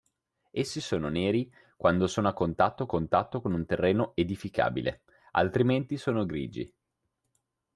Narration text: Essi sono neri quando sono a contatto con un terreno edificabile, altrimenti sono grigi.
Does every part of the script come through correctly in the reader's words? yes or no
no